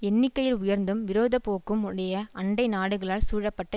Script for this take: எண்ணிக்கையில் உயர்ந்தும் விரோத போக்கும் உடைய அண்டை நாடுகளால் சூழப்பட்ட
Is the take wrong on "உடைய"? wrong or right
right